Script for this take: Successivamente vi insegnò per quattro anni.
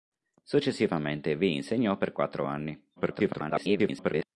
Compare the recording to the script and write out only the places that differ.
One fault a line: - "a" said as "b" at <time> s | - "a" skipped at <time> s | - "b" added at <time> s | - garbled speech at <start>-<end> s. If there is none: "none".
- garbled speech at 3.0-4.3 s